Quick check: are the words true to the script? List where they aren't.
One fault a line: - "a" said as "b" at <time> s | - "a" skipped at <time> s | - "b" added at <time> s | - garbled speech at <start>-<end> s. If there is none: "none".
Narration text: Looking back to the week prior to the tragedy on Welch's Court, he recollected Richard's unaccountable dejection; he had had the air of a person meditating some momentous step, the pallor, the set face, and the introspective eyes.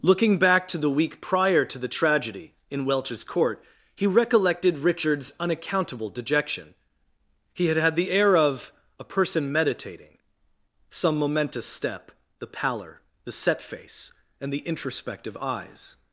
- "on" said as "in" at 2.7 s